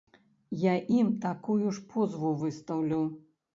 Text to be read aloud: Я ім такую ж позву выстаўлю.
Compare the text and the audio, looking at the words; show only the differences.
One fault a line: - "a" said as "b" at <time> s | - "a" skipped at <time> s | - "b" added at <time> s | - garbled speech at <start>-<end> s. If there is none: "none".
none